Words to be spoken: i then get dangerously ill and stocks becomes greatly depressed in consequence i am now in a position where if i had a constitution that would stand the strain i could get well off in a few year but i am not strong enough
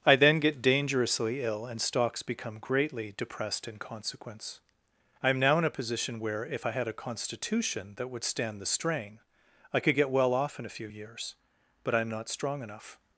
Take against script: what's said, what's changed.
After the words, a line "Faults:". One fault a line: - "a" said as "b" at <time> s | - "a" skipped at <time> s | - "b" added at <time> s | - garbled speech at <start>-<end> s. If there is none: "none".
i then get dangerously ill and stocks become greatly depressed in consequence i am now in a position where if i had a constitution that would stand the strain i could get well off in a few years but i am not strong enough
Faults:
- "becomes" said as "become" at 2.2 s
- "year" said as "years" at 10.8 s